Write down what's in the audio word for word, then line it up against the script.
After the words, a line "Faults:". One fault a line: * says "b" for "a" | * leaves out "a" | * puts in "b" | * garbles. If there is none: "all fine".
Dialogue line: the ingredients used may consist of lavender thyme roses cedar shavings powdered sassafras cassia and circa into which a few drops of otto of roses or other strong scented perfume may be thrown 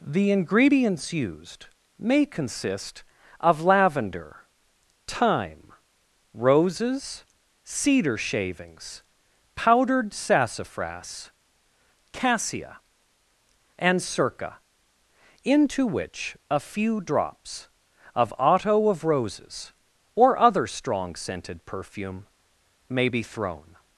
the ingredients used may consist of lavender thyme roses cedar shavings powdered sassafras cassia and circa into which a few drops of otto of roses or other strong scented perfume may be thrown
Faults:
all fine